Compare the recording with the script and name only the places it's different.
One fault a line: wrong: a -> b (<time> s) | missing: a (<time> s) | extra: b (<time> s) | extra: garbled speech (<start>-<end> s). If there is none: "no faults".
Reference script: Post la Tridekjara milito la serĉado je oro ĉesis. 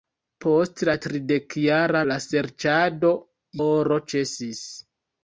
missing: milito (2.0 s)
missing: je (3.1 s)